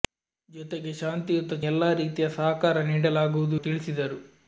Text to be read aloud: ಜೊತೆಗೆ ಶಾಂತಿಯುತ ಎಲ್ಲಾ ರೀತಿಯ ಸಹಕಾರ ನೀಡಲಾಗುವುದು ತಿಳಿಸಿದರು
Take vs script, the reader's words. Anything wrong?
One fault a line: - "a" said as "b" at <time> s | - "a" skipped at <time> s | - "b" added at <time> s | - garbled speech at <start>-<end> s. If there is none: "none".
none